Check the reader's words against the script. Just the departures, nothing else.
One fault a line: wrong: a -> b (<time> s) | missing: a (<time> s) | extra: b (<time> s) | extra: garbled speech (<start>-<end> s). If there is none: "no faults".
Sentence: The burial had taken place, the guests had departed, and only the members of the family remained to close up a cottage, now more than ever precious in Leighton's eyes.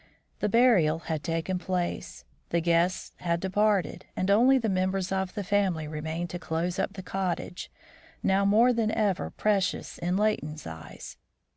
wrong: a -> the (6.9 s)